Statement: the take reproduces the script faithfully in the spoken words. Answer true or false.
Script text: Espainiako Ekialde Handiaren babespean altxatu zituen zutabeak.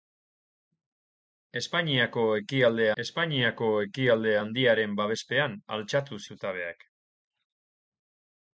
false